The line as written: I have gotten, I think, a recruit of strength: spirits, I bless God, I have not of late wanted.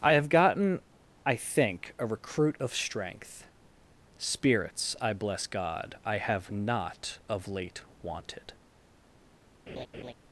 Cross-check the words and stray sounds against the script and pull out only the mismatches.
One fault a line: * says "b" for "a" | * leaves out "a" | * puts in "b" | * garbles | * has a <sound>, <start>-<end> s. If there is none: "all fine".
* has a laugh, 9.7-10.1 s